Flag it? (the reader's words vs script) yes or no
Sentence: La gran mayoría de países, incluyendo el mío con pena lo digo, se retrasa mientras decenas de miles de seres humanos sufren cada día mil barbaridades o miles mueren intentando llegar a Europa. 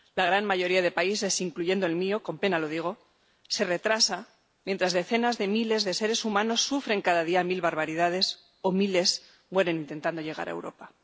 no